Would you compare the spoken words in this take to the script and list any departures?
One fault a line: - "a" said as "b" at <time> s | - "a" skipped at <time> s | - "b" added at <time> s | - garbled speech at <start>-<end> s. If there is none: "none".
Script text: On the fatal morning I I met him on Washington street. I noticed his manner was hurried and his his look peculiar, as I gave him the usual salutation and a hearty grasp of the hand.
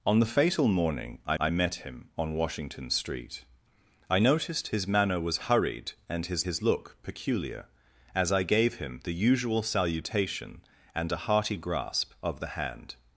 none